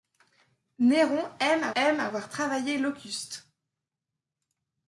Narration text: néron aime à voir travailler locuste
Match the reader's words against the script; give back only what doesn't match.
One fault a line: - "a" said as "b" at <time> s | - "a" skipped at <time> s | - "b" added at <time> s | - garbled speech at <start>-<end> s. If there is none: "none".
- "aime à" added at 1.7 s